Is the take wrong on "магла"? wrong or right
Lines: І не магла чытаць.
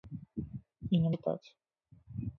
wrong